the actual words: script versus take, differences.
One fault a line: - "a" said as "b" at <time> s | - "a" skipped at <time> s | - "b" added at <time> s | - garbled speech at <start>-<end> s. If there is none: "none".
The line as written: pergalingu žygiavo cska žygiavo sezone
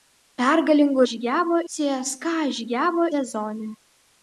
none